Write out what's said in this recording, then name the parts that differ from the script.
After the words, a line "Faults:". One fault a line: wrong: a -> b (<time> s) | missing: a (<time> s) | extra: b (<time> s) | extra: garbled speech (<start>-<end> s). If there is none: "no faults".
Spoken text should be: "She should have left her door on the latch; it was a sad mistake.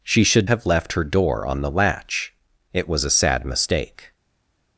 "She should have left her door on the latch; it was a sad mistake.
Faults:
no faults